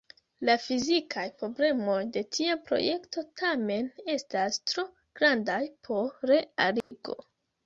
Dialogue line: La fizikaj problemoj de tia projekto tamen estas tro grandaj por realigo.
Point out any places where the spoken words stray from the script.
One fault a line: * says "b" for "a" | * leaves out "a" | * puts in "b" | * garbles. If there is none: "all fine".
all fine